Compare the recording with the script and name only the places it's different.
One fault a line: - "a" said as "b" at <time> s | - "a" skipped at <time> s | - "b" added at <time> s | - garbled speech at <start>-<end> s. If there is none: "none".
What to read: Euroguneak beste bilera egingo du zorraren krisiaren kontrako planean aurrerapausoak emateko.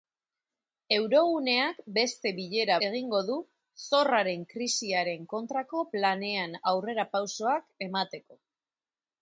none